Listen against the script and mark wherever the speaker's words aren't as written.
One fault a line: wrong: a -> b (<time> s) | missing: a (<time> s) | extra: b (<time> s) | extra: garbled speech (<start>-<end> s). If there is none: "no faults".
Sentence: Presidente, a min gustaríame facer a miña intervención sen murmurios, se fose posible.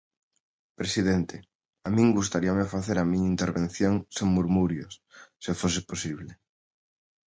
no faults